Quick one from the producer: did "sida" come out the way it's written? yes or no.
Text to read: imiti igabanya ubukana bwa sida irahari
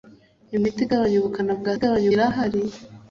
no